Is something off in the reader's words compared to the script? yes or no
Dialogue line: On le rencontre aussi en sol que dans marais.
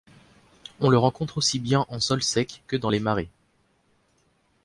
yes